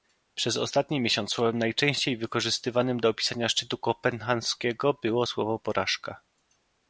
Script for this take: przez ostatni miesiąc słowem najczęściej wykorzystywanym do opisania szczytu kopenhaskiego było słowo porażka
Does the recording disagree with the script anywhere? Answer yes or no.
no